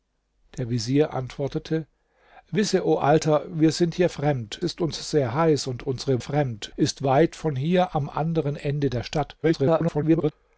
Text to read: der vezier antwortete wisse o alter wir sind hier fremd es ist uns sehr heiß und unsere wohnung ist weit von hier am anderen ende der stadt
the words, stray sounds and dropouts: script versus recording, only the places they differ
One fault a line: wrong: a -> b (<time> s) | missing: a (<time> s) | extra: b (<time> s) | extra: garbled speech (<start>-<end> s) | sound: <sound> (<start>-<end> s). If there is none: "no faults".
missing: es (4.6 s)
wrong: wohnung -> fremd (6.2 s)
extra: garbled speech (9.4-10.3 s)